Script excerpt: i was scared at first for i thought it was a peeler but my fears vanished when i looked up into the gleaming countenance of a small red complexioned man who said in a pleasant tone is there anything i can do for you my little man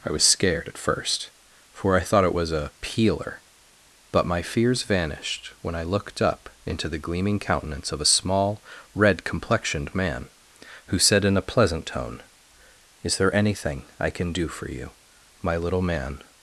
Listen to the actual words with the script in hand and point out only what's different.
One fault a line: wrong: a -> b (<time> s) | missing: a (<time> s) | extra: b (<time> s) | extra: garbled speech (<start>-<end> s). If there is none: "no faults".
no faults